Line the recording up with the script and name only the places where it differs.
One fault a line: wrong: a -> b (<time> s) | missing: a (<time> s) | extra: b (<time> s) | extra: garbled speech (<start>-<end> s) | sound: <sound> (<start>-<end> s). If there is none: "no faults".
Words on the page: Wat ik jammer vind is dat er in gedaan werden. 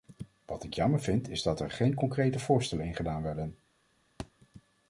extra: geen concrete voorstellen (1.7 s)
sound: thud (4.2-4.3 s)